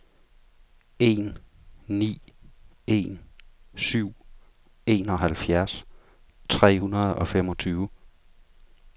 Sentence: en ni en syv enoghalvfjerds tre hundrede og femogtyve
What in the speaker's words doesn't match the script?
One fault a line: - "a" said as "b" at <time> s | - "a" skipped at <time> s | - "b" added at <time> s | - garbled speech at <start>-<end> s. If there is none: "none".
none